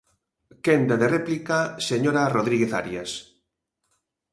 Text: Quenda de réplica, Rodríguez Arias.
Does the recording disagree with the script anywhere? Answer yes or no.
yes